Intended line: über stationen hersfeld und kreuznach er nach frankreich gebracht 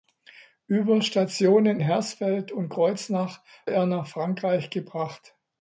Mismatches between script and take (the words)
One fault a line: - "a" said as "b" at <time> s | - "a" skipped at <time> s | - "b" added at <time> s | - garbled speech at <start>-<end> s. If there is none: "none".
none